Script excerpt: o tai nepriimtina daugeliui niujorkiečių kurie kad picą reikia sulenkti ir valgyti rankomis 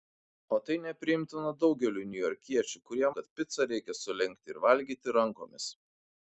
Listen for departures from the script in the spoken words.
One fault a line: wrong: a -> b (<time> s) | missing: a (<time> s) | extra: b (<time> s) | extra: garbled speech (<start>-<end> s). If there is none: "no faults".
no faults